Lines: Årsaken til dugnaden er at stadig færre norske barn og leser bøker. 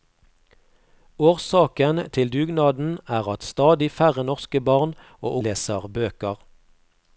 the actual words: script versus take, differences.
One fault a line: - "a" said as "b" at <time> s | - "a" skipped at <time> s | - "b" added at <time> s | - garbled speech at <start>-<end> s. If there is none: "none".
none